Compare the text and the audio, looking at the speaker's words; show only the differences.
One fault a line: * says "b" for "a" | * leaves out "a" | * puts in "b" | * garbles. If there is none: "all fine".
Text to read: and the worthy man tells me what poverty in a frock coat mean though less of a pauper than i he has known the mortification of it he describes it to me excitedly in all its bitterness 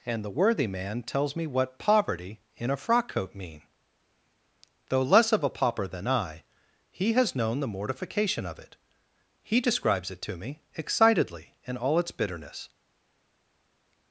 all fine